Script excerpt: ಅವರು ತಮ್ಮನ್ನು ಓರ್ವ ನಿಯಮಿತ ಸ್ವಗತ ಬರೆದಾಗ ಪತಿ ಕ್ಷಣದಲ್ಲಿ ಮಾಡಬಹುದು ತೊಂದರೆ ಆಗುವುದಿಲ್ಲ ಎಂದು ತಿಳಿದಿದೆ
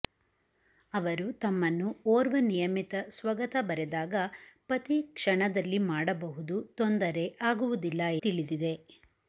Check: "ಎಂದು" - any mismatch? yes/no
yes